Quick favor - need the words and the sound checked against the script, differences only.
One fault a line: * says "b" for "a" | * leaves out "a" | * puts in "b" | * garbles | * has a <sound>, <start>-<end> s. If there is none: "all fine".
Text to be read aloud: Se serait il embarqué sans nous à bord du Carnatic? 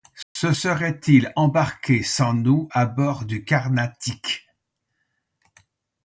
* has a dropout, 0.2-0.4 s